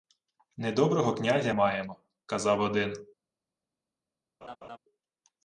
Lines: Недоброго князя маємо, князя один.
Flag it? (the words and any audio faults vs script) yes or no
yes